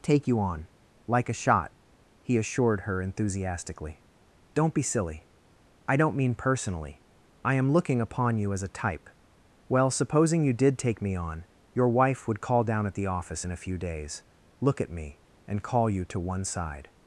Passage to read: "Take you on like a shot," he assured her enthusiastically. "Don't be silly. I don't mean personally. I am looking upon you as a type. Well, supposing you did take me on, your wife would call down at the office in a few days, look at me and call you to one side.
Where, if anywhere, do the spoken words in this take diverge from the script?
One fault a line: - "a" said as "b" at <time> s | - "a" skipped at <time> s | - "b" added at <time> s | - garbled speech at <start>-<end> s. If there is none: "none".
none